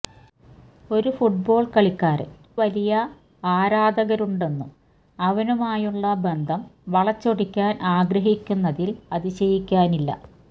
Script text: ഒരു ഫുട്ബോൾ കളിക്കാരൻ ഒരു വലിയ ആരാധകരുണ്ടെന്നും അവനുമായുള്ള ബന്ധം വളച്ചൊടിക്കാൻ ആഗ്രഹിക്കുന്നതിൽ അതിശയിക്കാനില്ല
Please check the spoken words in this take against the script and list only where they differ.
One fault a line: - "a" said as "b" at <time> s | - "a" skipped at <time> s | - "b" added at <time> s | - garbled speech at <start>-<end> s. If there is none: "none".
- "ഒരു" skipped at 2.3 s